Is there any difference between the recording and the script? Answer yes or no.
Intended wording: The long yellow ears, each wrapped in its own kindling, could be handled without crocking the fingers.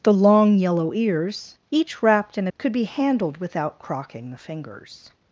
yes